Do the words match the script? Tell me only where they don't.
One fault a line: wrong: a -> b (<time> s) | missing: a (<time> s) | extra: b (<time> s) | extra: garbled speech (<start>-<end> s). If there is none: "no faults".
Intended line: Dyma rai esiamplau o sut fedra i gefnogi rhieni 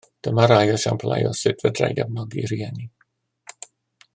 no faults